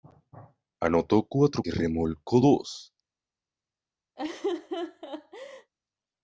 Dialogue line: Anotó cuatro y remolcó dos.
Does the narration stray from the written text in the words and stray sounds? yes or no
yes